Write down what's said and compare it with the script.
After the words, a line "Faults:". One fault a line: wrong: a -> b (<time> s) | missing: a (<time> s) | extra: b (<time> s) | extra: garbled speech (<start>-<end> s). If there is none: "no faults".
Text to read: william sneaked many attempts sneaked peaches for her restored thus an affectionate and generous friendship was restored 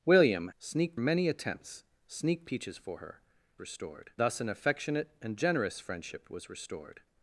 william sneaked many attempts sneaked peaches for her restored thus an affectionate and generous friendship was restored
Faults:
no faults